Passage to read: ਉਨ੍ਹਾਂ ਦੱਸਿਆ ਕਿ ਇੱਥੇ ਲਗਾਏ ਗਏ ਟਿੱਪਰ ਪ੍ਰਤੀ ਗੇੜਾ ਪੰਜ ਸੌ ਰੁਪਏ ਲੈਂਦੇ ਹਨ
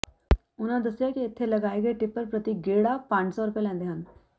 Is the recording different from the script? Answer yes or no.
no